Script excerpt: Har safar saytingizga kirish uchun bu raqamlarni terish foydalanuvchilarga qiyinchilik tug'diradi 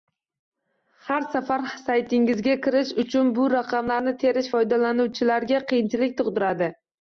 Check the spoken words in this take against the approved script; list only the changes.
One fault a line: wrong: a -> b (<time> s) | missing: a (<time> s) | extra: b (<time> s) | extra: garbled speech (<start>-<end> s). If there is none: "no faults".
no faults